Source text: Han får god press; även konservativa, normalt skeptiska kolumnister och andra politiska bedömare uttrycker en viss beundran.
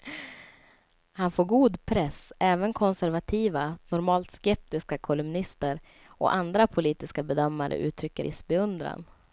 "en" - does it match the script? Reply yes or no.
no